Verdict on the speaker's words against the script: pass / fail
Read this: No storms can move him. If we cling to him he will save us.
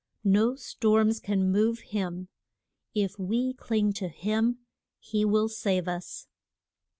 pass